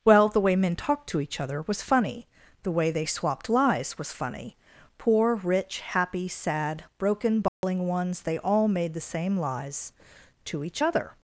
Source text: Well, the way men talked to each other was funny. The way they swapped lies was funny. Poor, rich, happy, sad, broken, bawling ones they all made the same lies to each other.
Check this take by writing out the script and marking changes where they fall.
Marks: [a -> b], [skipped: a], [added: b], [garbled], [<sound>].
Well, the way men talked to each other was funny. The way they swapped lies was funny. Poor, rich, happy, sad, broken, bawling [dropout] ones they all made the same lies to each other.